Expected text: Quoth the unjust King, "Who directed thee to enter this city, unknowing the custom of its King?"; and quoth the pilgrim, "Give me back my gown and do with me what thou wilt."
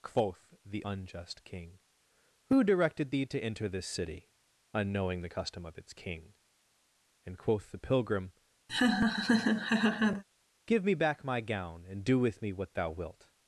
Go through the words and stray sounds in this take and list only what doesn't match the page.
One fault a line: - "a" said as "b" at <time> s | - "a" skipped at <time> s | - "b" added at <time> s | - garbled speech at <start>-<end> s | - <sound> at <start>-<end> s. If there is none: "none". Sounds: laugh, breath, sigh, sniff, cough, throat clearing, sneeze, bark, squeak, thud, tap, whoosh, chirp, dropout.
- laugh at 8.7-10.2 s